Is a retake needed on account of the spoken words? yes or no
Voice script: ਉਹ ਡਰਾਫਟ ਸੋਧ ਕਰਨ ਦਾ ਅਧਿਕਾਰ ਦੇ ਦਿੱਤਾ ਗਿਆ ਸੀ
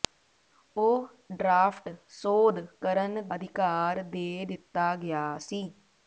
yes